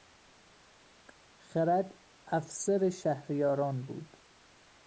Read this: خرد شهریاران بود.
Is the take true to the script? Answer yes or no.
no